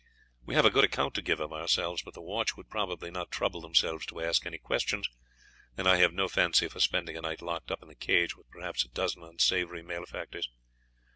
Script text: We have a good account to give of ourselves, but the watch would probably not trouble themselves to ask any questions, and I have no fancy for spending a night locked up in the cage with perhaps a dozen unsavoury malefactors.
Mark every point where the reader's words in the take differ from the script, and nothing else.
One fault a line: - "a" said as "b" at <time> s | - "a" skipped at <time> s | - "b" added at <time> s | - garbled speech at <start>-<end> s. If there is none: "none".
none